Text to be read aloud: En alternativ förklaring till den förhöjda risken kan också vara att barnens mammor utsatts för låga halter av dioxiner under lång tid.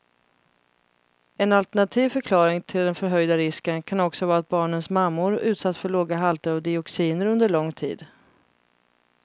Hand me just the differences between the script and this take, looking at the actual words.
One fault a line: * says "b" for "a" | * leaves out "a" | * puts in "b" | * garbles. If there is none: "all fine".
all fine